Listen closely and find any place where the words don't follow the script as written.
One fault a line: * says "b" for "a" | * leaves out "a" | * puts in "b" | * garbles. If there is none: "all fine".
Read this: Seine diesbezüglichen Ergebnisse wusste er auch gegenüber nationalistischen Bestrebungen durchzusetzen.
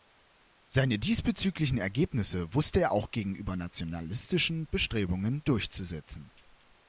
all fine